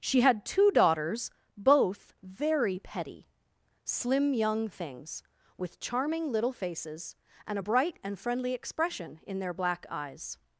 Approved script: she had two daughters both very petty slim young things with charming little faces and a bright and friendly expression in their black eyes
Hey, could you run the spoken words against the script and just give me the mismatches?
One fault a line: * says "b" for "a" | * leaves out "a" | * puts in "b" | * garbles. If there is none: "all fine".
all fine